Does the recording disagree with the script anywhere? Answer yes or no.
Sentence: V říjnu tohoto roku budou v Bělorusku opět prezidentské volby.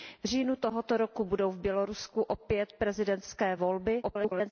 yes